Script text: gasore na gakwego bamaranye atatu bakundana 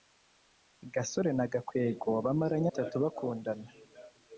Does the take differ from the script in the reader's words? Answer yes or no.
no